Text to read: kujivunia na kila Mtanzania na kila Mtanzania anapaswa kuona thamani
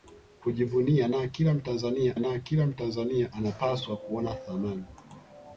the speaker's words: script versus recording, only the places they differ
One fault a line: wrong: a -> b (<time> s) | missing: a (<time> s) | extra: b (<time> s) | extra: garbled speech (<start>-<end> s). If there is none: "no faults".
no faults